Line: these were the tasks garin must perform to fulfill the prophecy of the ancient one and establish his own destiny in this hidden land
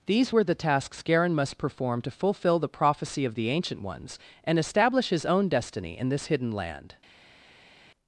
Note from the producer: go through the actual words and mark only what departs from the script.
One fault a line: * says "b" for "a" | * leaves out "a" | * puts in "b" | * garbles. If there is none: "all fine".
* says "ones" for "one"